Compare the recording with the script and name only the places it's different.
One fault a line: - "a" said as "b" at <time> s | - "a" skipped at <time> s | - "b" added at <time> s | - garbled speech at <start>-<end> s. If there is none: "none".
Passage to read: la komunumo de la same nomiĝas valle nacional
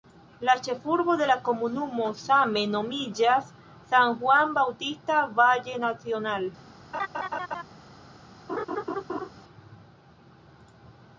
- "komunumo" said as "ĉefurbo" at 0.7 s
- "komunumo" added at 1.5 s
- "san juan bautista" added at 3.9 s